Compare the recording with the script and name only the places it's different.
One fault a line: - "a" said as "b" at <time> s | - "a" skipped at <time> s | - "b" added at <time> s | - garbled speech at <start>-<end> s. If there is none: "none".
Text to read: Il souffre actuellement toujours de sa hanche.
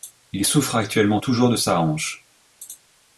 none